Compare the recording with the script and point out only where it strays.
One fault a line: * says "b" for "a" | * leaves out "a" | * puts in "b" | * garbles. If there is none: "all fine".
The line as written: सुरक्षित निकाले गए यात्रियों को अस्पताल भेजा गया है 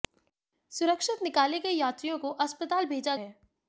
* leaves out "गया"